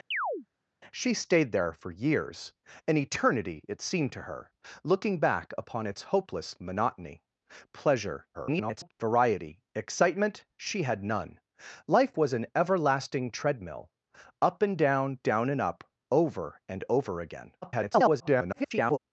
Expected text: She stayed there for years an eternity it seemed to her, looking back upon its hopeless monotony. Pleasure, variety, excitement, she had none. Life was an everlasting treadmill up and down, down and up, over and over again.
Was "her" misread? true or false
false